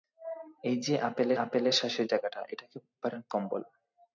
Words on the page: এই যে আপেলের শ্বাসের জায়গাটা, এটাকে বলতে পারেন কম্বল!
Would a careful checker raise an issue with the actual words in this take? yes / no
yes